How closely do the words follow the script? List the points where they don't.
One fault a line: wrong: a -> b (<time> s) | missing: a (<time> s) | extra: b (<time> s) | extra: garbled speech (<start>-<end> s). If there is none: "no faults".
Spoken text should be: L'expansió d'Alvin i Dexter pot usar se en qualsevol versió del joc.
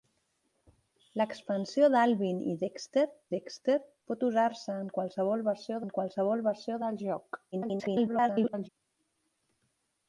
extra: Dexter (3.4 s)
extra: en qualsevol versió (5.8 s)
extra: garbled speech (7.5-8.7 s)